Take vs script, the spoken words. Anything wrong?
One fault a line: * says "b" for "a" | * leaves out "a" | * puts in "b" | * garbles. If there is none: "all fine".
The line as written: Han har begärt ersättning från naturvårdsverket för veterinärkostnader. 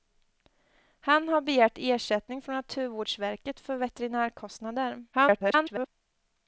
* garbles